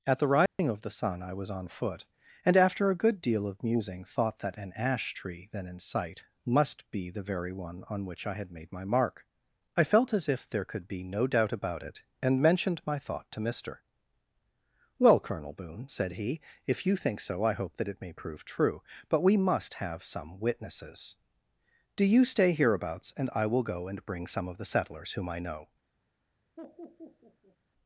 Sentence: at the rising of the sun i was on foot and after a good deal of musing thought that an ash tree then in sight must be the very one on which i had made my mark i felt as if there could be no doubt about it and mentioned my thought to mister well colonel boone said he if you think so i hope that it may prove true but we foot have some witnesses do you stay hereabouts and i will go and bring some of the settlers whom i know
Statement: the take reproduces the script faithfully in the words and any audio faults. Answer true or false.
false